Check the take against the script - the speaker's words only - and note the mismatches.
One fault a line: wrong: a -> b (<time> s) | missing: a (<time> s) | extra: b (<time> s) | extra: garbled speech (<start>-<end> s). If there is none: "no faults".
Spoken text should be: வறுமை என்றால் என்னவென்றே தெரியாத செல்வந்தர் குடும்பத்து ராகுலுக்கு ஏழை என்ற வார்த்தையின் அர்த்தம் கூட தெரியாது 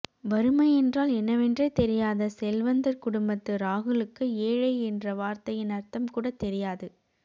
no faults